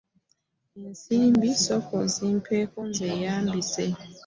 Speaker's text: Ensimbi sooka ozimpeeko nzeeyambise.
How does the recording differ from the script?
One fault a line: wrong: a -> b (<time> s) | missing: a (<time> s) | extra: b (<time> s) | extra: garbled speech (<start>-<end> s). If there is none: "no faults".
no faults